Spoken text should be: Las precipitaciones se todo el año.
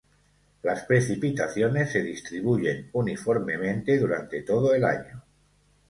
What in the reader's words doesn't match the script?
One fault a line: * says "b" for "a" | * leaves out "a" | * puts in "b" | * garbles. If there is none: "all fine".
* puts in "distribuyen uniformemente durante"